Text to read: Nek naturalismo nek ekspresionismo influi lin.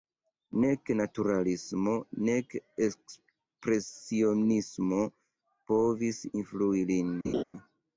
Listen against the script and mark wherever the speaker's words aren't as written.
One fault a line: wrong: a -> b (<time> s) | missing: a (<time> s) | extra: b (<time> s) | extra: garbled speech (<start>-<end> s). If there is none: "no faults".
extra: povis (5.7 s)